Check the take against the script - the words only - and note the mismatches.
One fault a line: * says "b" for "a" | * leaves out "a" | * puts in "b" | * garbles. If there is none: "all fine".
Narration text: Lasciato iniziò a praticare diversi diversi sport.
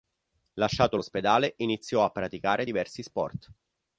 * puts in "l'ospedale"
* leaves out "diversi"